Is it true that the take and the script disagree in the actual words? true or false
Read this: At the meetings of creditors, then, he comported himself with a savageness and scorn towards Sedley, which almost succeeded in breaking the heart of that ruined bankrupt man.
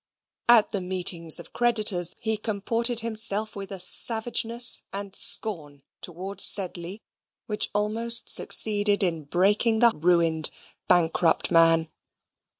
true